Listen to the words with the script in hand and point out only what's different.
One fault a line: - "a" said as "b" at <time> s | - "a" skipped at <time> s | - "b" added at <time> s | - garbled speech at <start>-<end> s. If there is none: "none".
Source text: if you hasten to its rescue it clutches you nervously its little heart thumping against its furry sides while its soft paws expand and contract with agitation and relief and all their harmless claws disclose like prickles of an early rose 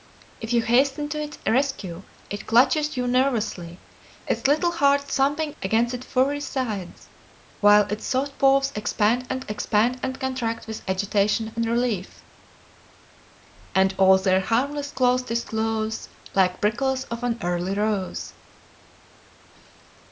- "expand and" added at 9.5 s